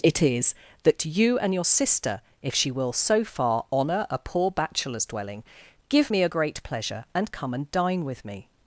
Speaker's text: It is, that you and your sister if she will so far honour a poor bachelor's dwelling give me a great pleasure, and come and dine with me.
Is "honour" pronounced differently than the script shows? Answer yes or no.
no